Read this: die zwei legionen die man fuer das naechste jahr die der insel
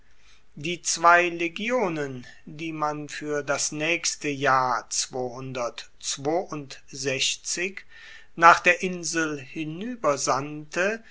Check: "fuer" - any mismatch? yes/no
no